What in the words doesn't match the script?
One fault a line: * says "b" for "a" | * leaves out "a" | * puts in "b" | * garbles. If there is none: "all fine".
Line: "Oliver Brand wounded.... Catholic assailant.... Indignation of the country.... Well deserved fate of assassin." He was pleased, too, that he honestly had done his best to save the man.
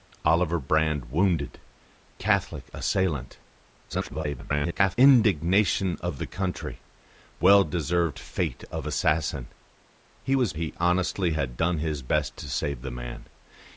* garbles
* leaves out "pleased too that"